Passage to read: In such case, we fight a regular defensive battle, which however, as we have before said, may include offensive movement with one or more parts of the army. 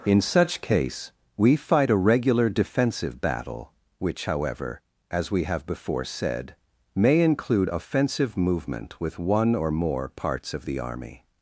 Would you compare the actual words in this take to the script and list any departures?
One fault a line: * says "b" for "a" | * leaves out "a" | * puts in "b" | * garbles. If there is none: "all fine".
all fine